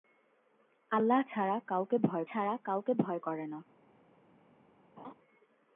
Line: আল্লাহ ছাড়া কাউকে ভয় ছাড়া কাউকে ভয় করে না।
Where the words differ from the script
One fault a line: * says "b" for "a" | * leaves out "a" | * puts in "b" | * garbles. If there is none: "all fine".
all fine